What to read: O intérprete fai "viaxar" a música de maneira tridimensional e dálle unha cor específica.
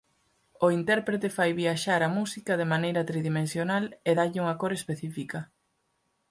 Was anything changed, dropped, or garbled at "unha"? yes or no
no